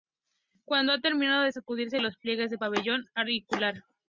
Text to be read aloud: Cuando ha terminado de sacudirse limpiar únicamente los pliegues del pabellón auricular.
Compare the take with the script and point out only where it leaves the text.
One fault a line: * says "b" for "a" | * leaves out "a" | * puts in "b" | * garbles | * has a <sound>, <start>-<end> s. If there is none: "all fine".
* leaves out "limpiar únicamente"